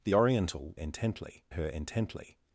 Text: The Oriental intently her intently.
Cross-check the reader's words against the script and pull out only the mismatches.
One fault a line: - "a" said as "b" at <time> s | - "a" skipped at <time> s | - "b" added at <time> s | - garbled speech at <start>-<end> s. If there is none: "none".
none